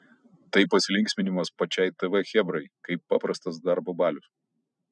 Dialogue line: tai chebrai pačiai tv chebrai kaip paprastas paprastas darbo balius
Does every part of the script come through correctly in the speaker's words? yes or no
no